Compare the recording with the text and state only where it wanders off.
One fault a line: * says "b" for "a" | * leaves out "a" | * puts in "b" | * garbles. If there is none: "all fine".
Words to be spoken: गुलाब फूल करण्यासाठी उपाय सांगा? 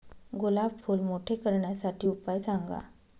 * puts in "मोठे"